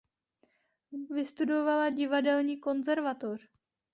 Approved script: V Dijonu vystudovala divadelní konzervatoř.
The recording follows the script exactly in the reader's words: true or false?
false